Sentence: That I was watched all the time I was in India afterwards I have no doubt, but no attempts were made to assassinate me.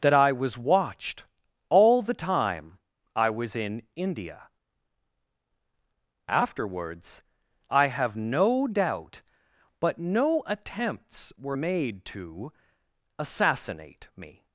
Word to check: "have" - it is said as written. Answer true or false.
true